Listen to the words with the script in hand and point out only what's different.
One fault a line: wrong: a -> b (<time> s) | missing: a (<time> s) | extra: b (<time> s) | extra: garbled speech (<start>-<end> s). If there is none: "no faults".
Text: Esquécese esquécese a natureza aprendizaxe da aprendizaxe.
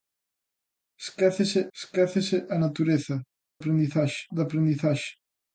no faults